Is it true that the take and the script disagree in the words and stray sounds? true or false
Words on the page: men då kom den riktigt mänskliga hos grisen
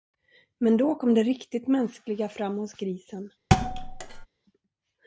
true